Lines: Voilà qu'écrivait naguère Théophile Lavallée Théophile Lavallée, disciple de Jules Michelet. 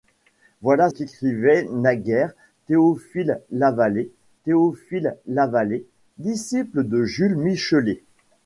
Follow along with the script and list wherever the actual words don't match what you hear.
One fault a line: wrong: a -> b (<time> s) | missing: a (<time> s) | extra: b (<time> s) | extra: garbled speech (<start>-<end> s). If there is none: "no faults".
no faults